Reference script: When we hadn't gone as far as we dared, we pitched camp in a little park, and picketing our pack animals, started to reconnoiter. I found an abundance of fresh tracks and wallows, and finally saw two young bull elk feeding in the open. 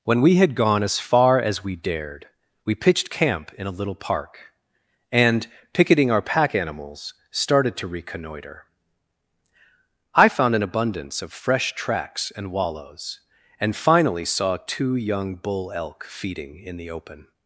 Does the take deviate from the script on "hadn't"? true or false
true